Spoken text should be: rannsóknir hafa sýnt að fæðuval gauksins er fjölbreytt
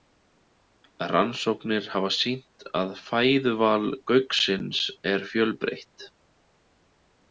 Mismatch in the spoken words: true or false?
false